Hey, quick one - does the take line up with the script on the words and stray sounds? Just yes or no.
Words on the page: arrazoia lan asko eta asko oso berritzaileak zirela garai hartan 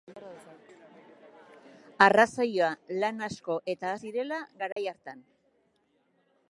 no